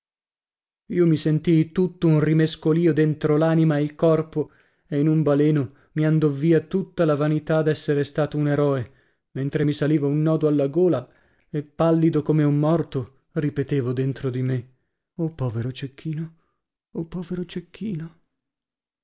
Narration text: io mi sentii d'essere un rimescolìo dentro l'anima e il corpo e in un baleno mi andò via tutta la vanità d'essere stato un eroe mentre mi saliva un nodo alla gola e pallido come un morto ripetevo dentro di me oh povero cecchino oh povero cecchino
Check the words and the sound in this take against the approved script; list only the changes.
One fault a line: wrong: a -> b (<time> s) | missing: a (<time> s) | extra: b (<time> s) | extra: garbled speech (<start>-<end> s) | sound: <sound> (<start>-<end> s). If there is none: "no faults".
wrong: d'essere -> tutto (1.7 s)